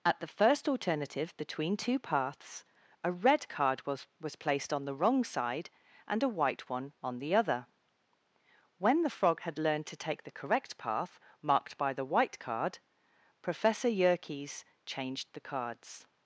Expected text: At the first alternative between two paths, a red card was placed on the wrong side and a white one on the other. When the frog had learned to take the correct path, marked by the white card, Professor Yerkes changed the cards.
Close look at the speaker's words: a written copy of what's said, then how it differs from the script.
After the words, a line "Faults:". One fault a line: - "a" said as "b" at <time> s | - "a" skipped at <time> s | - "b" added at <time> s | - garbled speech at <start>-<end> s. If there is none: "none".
At the first alternative between two paths, a red card was was placed on the wrong side and a white one on the other. When the frog had learned to take the correct path, marked by the white card, Professor Yerkes changed the cards.
Faults:
- "was" added at 4.2 s